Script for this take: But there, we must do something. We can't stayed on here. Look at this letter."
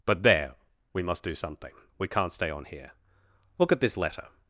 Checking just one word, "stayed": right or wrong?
wrong